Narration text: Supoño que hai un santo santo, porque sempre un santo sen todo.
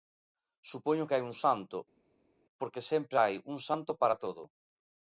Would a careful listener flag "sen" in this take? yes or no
yes